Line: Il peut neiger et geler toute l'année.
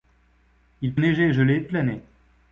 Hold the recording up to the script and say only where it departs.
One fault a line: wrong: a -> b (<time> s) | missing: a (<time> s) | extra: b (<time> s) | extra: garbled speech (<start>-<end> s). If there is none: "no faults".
missing: peut (0.9 s)
missing: toute (1.7 s)